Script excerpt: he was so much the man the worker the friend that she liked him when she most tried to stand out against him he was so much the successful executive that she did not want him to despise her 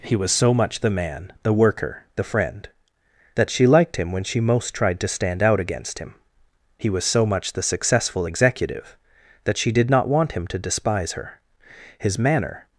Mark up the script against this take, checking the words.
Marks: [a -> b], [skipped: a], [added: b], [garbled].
he was so much the man the worker the friend that she liked him when she most tried to stand out against him he was so much the successful executive that she did not want him to despise her [added: his manner]